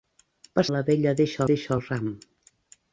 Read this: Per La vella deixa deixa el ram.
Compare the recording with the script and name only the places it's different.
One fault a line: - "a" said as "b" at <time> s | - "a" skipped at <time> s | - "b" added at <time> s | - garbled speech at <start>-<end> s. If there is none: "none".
none